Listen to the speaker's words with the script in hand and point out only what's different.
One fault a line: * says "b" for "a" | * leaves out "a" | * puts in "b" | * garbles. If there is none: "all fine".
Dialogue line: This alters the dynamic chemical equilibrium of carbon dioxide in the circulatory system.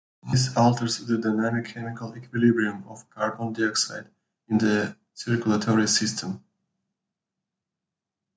all fine